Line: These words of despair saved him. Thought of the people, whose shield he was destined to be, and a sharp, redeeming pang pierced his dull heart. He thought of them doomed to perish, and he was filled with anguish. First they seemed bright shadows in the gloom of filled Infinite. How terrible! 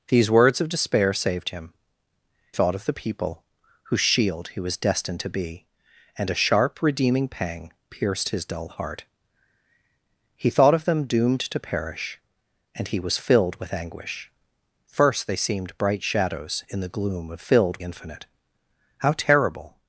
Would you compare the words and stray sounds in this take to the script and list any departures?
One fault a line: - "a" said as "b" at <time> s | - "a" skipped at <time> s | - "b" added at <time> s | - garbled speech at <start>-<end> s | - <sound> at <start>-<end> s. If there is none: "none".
none